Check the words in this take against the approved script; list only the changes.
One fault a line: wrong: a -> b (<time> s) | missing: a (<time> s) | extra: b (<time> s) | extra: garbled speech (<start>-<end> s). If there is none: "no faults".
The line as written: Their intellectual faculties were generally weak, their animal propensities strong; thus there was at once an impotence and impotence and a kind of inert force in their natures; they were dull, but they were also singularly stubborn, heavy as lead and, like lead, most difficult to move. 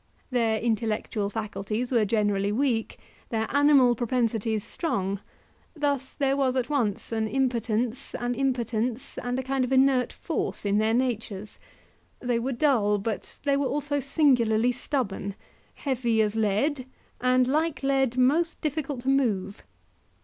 no faults